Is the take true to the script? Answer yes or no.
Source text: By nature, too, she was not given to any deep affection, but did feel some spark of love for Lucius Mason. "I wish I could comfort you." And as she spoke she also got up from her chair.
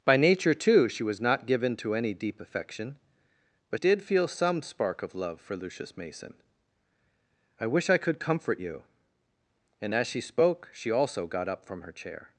yes